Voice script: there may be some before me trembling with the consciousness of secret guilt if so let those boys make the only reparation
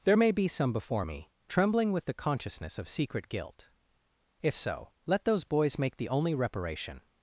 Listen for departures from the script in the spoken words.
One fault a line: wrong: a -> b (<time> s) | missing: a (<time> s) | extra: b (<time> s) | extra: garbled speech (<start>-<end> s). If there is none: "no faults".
no faults